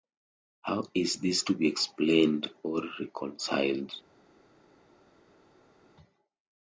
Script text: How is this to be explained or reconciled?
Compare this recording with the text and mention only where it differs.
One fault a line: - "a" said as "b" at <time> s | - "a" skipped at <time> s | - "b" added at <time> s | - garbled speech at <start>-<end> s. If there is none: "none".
none